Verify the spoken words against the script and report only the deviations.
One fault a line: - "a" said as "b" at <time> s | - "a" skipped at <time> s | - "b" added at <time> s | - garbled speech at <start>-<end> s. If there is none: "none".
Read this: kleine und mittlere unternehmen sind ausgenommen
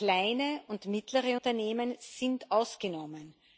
none